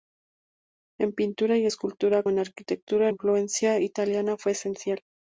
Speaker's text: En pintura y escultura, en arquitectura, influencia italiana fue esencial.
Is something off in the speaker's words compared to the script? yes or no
no